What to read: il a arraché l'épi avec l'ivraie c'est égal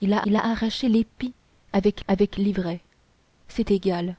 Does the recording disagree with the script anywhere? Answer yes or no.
yes